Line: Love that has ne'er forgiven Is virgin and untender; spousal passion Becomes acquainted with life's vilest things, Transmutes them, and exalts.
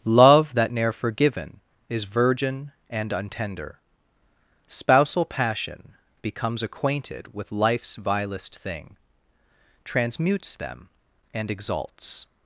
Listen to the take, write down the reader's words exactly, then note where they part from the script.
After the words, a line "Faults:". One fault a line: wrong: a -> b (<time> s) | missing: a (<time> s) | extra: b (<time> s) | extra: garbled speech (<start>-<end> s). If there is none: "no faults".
Love that ne'er forgiven Is virgin and untender; spousal passion Becomes acquainted with life's vilest thing, Transmutes them, and exalts.
Faults:
missing: has (0.7 s)
wrong: things -> thing (8.6 s)